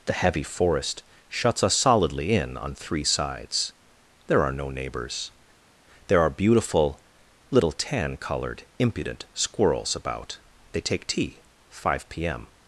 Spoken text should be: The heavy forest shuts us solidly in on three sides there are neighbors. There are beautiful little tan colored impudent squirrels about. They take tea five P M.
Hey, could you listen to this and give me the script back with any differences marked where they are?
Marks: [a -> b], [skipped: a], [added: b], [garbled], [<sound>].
The heavy forest shuts us solidly in on three sides there are [added: no] neighbors. There are beautiful little tan colored impudent squirrels about. They take tea five P M.